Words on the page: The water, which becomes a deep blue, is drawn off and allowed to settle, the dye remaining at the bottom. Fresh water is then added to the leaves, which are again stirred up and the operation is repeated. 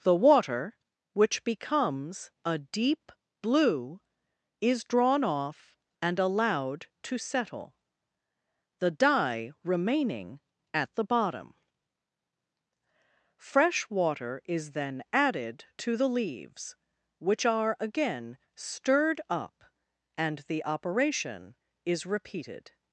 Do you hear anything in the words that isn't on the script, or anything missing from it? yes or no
no